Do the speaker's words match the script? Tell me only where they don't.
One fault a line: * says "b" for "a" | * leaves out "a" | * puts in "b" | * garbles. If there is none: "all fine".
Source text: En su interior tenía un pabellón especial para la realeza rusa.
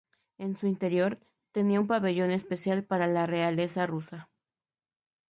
all fine